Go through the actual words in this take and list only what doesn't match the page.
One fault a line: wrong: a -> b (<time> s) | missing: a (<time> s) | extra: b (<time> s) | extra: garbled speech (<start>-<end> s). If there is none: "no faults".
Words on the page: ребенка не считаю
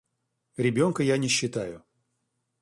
extra: я (1.0 s)